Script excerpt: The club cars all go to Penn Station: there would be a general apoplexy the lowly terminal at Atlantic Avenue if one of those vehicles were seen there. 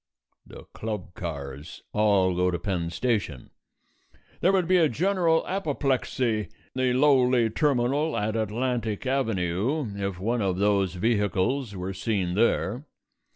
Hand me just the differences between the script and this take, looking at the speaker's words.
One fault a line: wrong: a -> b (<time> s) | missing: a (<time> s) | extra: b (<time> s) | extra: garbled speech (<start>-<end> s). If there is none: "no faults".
no faults